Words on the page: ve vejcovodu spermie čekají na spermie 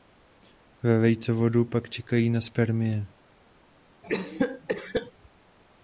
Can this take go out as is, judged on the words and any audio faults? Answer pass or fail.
fail